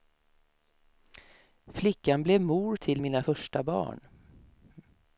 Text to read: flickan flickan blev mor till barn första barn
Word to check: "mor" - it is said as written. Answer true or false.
true